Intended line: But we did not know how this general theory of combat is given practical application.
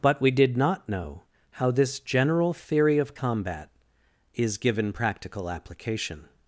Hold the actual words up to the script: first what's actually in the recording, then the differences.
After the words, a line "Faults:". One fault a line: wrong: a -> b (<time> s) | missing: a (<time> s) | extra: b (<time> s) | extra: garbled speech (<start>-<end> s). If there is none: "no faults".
But we did not know how this general theory of combat is given practical application.
Faults:
no faults